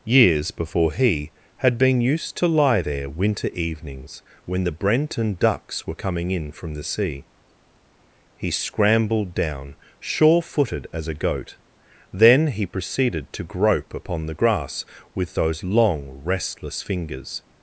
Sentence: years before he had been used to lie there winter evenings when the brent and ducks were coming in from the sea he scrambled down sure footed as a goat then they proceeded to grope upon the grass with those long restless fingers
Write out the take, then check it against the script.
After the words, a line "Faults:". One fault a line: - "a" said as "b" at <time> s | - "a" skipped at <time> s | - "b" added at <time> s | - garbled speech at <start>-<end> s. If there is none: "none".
years before he had been used to lie there winter evenings when the brent and ducks were coming in from the sea he scrambled down sure footed as a goat then he proceeded to grope upon the grass with those long restless fingers
Faults:
- "they" said as "he" at 12.5 s